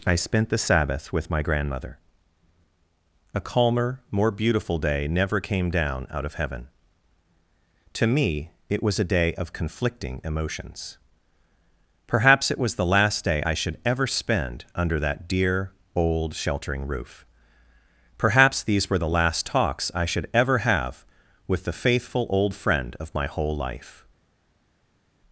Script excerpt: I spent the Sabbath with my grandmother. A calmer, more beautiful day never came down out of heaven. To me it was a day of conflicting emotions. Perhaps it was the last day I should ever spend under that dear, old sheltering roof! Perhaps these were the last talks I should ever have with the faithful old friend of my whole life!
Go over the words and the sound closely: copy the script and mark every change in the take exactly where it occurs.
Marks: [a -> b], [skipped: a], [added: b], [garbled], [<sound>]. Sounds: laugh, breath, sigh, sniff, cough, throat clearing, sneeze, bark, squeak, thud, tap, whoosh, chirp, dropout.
I spent the Sabbath with my grandmother. A calmer, more beautiful day never came down out of heaven. To me it was a day of conflicting emotions. Perhaps it was the last day I should ever spend under that dear, old sheltering roof! Perhaps these were the last talks I should ever have with the faithful old friend of my whole life!